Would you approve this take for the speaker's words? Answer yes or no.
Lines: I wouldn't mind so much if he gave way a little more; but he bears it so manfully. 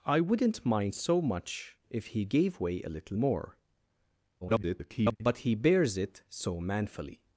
no